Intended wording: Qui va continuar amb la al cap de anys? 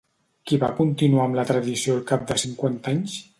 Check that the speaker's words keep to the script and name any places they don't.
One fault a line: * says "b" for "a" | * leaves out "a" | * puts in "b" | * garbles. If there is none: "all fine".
* puts in "tradició"
* puts in "cinquanta"